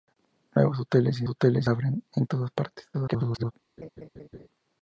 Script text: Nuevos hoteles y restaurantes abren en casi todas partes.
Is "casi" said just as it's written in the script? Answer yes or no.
no